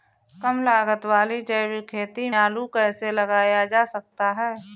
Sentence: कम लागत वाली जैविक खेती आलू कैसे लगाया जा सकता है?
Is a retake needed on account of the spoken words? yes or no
no